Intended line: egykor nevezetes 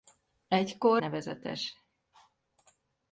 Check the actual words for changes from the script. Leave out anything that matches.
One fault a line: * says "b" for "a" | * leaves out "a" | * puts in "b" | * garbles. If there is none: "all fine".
all fine